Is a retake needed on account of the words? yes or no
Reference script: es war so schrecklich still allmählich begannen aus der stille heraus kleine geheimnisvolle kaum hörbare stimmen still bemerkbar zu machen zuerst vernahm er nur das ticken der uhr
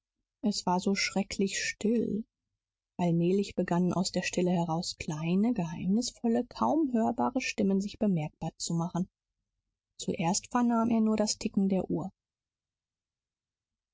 yes